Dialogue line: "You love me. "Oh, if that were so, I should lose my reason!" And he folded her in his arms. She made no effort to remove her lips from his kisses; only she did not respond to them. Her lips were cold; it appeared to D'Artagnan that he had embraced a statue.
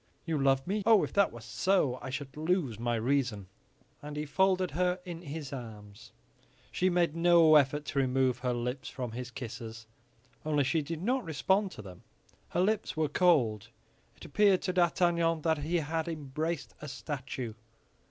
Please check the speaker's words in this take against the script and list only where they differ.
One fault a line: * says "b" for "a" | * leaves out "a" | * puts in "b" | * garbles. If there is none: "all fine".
all fine